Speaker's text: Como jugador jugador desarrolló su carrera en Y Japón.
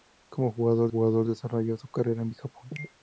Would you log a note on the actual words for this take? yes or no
no